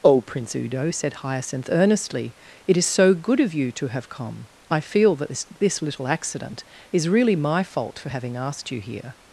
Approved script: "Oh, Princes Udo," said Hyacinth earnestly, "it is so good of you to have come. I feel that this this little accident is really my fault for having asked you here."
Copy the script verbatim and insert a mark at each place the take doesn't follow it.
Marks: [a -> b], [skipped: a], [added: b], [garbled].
"Oh, [Princes -> Prince] Udo," said Hyacinth earnestly, "it is so good of you to have come. I feel that this this little accident is really my fault for having asked you here."